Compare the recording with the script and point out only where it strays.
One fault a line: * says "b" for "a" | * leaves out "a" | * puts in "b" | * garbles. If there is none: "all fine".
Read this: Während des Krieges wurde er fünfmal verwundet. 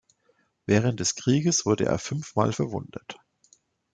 all fine